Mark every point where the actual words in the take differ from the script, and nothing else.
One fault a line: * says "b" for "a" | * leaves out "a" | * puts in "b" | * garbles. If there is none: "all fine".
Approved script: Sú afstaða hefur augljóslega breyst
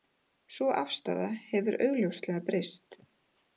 all fine